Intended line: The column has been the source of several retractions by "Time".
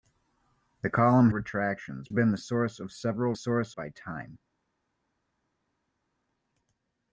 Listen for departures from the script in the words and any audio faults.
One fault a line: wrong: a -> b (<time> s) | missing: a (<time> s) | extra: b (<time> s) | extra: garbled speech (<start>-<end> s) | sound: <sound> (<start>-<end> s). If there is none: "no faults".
wrong: has -> retractions (1.3 s)
wrong: retractions -> source (3.3 s)